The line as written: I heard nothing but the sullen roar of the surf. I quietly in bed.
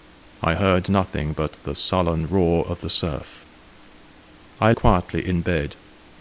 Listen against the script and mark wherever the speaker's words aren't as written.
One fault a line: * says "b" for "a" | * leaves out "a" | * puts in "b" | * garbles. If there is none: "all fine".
all fine